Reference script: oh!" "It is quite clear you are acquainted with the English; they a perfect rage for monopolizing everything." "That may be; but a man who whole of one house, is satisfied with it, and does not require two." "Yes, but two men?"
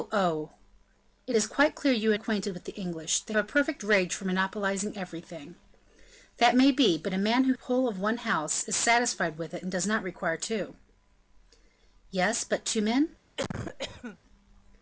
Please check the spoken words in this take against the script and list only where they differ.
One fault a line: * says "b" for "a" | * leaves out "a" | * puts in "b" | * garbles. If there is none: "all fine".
all fine